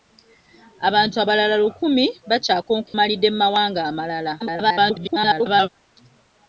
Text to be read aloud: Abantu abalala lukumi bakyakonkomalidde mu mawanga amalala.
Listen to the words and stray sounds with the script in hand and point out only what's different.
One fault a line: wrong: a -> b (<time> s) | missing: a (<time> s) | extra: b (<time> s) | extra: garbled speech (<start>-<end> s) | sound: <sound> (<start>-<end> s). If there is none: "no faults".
sound: dropout (2.9-2.9 s)
extra: garbled speech (4.4-5.7 s)